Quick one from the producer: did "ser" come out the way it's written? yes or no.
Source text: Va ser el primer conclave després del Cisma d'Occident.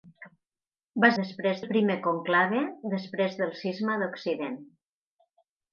no